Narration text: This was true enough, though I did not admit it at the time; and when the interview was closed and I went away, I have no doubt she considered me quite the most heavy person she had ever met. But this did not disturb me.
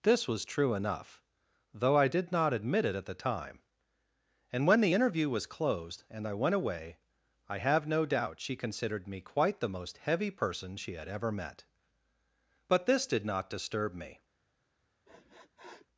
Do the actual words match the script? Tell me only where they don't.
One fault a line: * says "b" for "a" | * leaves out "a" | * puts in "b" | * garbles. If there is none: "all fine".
all fine